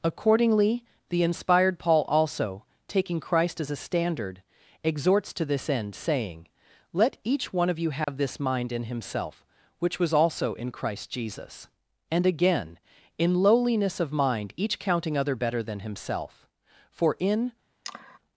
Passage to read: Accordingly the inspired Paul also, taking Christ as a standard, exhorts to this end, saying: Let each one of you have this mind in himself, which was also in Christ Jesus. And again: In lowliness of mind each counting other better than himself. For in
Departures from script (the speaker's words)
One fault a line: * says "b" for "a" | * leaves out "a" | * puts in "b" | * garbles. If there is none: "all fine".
all fine